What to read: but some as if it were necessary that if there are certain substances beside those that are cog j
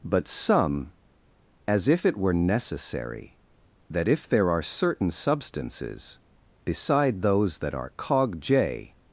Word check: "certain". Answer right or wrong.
right